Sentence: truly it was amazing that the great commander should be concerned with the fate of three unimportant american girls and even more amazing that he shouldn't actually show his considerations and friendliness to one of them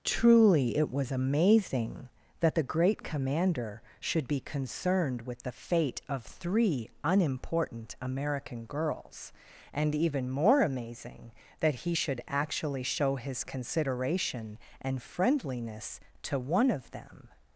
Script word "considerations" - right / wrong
wrong